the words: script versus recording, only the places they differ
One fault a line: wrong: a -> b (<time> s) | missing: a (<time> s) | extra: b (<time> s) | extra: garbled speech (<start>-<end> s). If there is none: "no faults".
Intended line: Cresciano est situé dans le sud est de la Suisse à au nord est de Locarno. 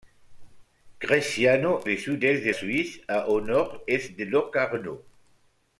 missing: est situé dans (1.9 s)
missing: la (2.5 s)